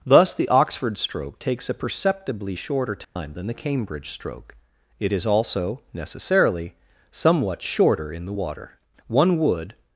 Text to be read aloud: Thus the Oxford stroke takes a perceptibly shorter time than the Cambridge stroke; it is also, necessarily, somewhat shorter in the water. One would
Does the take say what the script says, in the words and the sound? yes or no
no